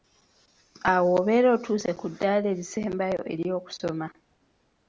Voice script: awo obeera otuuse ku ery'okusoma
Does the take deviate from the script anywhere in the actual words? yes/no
yes